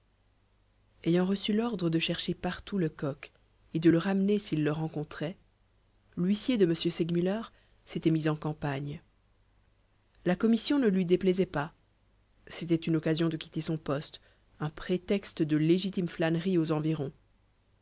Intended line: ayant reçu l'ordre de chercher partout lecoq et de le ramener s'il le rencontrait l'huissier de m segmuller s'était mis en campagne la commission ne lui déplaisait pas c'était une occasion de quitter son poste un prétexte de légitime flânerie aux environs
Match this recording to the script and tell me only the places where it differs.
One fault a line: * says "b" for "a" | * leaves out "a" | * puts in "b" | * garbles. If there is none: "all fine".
all fine